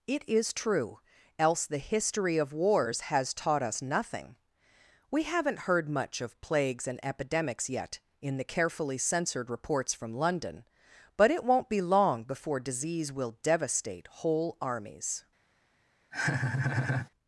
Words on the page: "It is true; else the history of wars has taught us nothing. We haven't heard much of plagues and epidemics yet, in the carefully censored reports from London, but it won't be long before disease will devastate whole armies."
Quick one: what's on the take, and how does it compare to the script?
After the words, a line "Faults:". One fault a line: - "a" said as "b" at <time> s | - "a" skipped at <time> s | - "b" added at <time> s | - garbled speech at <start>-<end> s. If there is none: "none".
"It is true; else the history of wars has taught us nothing. We haven't heard much of plagues and epidemics yet, in the carefully censored reports from London, but it won't be long before disease will devastate whole armies."
Faults:
none